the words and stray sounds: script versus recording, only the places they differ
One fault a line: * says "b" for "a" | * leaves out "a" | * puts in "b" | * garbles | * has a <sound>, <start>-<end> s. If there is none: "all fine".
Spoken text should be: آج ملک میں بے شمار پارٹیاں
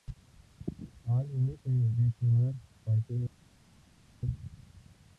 all fine